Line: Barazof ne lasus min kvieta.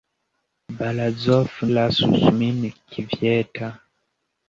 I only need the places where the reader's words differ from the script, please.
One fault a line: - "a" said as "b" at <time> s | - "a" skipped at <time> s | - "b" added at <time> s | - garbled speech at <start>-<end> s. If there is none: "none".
- "ne" skipped at 1.5 s